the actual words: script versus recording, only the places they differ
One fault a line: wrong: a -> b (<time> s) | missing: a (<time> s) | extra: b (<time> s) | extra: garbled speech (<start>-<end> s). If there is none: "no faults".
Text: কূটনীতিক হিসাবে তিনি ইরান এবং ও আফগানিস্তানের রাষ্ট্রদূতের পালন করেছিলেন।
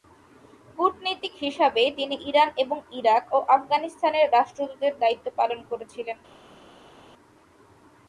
extra: ইরাক (2.9 s)
extra: দায়িত্ব (5.0 s)